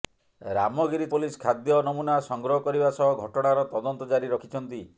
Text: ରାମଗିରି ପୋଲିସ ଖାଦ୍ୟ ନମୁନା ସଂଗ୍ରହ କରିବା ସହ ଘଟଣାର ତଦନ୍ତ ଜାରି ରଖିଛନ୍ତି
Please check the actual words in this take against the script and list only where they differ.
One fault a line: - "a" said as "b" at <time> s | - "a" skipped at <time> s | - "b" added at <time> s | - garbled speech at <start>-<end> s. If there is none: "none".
none